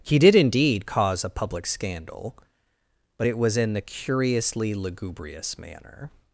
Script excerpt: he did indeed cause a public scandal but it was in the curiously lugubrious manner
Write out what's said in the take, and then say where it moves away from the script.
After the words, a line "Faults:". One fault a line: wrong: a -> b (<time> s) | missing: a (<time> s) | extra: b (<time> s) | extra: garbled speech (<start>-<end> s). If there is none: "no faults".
he did indeed cause a public scandal but it was in the curiously lugubrious manner
Faults:
no faults